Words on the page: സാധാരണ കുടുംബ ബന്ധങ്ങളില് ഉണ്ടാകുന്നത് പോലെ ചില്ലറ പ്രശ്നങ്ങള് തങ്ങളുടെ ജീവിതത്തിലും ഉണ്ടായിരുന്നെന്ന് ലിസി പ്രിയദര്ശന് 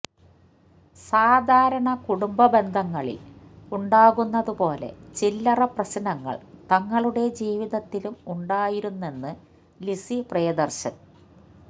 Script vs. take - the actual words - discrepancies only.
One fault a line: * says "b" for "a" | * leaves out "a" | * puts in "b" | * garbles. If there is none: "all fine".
all fine